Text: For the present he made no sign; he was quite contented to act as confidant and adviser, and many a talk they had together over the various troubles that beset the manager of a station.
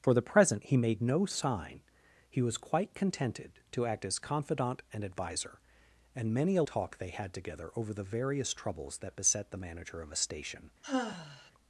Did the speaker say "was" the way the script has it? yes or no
yes